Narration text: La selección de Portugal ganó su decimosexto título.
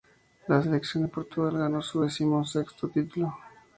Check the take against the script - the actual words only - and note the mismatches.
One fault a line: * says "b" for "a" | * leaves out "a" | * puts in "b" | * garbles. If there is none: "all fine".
all fine